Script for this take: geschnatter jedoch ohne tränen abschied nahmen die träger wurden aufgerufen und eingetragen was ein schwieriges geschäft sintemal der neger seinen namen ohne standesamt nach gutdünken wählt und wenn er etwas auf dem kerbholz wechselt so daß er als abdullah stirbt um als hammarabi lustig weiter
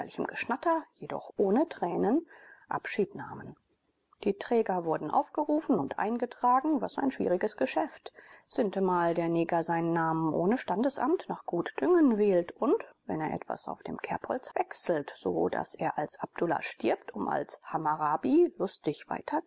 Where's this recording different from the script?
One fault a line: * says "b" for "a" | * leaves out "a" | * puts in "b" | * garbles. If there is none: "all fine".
all fine